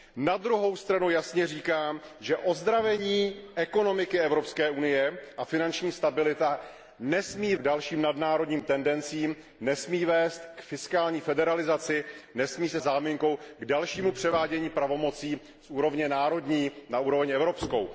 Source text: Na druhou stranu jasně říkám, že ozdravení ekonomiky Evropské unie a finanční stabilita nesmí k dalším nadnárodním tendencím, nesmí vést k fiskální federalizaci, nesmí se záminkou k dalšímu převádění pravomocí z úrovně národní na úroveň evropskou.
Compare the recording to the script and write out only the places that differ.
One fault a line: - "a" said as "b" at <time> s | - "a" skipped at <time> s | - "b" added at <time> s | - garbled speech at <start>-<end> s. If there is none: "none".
none